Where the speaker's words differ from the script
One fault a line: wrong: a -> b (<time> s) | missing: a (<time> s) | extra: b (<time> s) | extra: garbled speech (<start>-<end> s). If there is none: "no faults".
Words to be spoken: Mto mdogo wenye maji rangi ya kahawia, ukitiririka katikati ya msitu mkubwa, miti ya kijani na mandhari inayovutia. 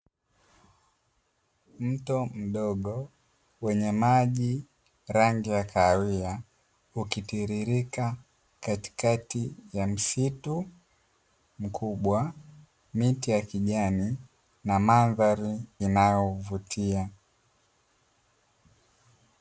no faults